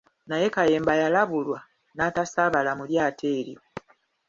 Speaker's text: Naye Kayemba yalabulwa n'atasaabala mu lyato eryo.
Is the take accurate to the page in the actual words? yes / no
yes